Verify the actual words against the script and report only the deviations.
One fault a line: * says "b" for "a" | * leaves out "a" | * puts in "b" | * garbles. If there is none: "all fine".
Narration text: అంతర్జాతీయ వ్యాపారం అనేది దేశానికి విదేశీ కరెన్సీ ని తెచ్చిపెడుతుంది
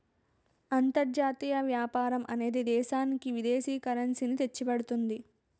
all fine